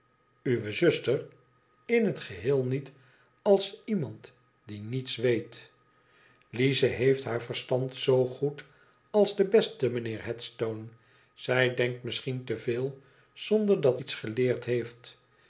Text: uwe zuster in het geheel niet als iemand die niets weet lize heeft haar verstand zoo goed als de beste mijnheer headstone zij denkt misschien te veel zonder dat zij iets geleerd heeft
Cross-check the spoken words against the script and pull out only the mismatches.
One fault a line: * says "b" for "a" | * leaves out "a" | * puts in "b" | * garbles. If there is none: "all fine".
* leaves out "zij"